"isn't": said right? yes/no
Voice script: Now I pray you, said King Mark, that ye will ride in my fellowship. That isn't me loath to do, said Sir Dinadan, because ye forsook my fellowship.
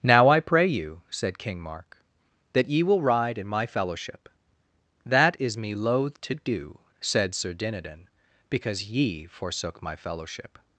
no